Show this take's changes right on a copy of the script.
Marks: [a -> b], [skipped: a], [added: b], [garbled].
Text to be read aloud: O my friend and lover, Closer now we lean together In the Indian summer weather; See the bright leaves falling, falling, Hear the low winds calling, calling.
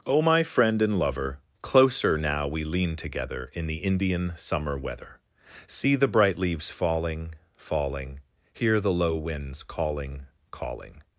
O my friend and lover, Closer now we lean together In the Indian summer weather; See the bright leaves falling, falling, Hear the low winds calling, calling.